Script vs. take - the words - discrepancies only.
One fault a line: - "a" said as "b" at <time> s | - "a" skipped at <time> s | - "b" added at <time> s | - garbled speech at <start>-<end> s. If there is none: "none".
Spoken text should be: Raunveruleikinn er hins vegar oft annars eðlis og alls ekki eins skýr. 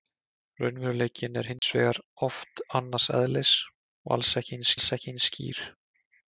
- "alls ekki eins" added at 4.8 s